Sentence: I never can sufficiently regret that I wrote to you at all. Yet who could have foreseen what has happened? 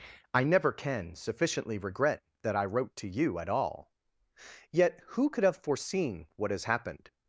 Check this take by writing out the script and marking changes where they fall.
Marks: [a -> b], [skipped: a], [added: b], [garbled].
I never can sufficiently regret that I wrote to you at all. Yet who could have foreseen what has happened?